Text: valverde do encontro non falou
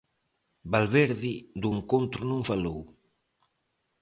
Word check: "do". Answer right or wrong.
right